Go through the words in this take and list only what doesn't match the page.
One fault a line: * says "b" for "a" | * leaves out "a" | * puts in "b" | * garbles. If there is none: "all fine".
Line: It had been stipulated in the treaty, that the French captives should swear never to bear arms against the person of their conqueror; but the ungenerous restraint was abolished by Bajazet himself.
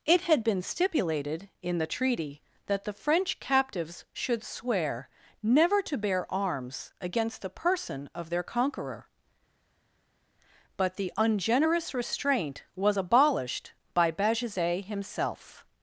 all fine